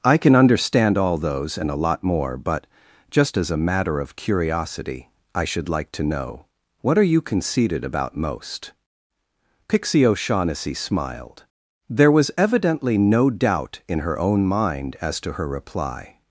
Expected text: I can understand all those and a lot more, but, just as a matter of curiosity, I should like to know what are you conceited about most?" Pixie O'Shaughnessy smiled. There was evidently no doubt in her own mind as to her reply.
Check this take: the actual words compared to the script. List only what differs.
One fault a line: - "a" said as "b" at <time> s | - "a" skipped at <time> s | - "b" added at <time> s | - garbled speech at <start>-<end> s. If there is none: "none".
none